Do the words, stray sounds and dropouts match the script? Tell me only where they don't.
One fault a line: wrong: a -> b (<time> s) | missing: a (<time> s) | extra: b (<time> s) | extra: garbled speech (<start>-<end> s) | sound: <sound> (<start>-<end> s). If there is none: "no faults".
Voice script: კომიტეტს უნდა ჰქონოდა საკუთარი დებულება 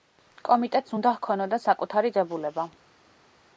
no faults